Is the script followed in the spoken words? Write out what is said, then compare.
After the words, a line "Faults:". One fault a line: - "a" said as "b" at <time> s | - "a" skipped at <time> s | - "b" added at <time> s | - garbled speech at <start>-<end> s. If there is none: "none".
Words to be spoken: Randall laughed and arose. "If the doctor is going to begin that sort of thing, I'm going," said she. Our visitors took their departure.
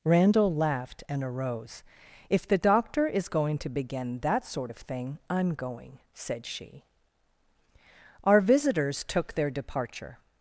Randall laughed and arose. "If the doctor is going to begin that sort of thing, I'm going," said she. Our visitors took their departure.
Faults:
none